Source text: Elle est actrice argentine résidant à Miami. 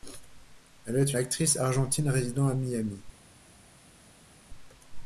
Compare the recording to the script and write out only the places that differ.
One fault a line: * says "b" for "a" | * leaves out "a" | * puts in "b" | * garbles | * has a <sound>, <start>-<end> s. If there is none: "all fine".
all fine